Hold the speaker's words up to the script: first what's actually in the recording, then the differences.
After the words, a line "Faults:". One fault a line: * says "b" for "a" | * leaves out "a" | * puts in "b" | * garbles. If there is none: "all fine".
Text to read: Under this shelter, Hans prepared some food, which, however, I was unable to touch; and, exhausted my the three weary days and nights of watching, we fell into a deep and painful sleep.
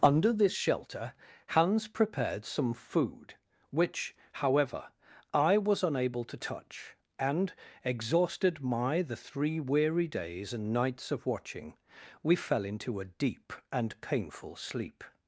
Under this shelter, Hans prepared some food, which, however, I was unable to touch; and, exhausted my the three weary days and nights of watching, we fell into a deep and painful sleep.
Faults:
all fine